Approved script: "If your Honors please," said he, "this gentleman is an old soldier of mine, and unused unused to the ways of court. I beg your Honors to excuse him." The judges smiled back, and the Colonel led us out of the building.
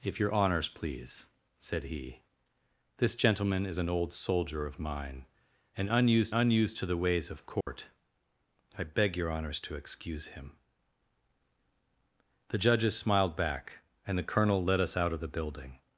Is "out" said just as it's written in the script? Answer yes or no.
yes